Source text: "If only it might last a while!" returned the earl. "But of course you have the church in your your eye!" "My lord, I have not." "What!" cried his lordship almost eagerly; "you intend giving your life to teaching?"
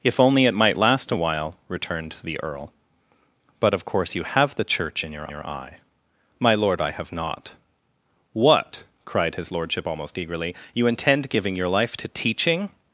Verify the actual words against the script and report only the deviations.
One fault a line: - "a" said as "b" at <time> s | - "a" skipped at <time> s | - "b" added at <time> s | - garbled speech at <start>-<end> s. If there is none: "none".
none